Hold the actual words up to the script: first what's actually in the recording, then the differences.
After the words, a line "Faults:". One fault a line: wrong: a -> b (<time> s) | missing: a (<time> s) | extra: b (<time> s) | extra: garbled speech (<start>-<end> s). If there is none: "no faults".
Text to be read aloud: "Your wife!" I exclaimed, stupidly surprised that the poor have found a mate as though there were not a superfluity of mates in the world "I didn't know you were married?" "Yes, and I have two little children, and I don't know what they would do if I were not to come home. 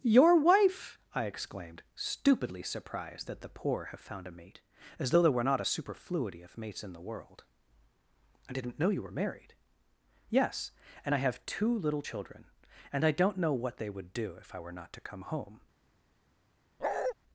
"Your wife!" I exclaimed, stupidly surprised that the poor have found a mate as though there were not a superfluity of mates in the world "I didn't know you were married?" "Yes, and I have two little children, and I don't know what they would do if I were not to come home.
Faults:
no faults